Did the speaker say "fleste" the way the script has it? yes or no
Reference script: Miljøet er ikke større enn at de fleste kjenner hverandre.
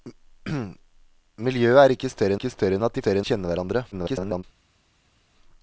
no